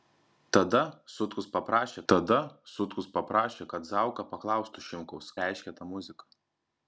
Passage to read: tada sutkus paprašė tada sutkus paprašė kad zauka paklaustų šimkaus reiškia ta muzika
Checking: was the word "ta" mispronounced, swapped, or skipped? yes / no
no